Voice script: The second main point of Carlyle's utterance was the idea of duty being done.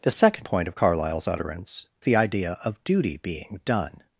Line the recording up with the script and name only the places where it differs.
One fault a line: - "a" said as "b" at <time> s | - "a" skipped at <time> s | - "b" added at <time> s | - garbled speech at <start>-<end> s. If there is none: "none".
- "main" skipped at 0.5 s
- "was" skipped at 1.9 s